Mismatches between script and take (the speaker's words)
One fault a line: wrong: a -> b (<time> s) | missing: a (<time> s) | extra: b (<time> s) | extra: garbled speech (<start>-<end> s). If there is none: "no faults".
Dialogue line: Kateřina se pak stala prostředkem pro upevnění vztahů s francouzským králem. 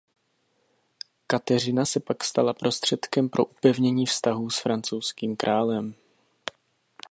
no faults